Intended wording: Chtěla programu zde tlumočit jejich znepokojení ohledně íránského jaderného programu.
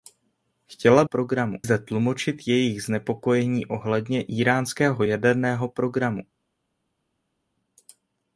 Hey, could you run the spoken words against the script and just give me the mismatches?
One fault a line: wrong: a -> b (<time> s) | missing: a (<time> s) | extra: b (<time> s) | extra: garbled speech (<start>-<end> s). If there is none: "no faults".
no faults